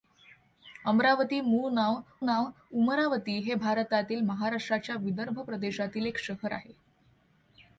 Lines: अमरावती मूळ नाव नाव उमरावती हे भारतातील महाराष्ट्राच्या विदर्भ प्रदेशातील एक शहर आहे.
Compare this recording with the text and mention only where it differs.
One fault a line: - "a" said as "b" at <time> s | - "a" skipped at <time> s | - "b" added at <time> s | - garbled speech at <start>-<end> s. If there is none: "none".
none